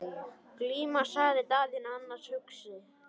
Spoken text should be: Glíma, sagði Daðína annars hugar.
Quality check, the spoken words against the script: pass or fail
pass